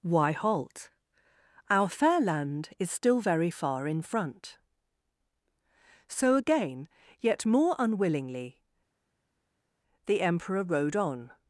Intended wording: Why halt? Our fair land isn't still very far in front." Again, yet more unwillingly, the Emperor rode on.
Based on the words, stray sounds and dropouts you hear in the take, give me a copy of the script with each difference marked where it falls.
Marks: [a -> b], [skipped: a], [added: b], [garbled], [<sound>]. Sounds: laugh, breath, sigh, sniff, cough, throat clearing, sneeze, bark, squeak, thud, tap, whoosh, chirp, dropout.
Why halt? Our fair land [isn't -> is] still very far in front." [added: So] Again, yet more unwillingly, the Emperor rode on.